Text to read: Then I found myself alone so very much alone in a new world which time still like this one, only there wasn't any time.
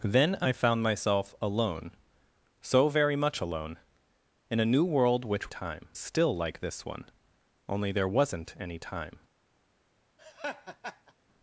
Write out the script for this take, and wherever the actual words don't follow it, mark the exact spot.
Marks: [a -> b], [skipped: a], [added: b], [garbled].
Then I found myself alone so very much alone in a new world which time still like this one, only there wasn't any time.